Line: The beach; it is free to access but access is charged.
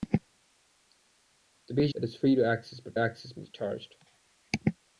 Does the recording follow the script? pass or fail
pass